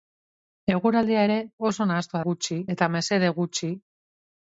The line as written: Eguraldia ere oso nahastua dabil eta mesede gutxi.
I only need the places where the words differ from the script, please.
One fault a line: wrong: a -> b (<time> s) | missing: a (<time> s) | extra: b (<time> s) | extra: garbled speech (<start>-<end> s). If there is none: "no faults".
wrong: dabil -> gutxi (2.3 s)